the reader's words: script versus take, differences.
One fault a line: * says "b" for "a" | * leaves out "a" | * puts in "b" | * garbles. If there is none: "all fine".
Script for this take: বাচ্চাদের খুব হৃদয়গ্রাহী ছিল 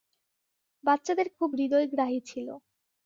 all fine